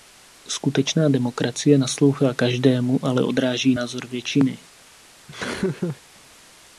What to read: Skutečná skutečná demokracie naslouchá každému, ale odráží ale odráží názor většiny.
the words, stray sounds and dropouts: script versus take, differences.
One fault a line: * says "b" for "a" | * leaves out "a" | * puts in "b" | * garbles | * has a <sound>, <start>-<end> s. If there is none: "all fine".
* leaves out "skutečná"
* leaves out "ale odráží"
* has a laugh, 5.3-6.0 s